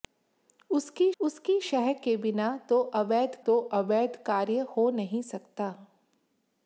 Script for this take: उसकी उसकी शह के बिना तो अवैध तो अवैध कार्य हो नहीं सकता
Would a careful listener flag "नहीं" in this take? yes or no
no